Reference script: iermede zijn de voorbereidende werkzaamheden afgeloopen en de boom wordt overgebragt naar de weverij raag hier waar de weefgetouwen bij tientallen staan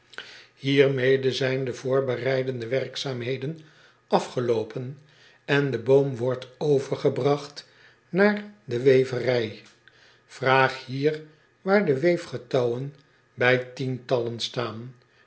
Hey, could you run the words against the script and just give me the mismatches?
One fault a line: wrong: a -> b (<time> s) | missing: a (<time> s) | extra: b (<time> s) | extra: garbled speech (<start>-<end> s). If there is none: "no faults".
no faults